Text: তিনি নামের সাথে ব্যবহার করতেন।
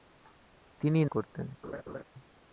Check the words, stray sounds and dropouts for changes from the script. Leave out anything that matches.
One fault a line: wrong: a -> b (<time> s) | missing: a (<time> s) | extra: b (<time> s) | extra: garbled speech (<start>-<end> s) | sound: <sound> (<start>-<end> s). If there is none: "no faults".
missing: নামের সাথে ব্যবহার (1.1 s)
sound: laugh (1.6-2.0 s)